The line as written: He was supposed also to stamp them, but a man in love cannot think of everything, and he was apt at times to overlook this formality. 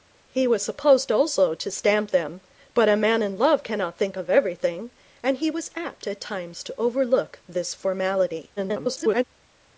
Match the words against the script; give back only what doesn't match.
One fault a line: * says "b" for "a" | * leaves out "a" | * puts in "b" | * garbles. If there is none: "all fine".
* garbles